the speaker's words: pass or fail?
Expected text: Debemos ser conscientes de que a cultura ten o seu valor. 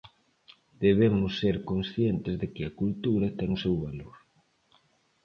pass